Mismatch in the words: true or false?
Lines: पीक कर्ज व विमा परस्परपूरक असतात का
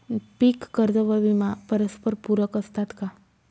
false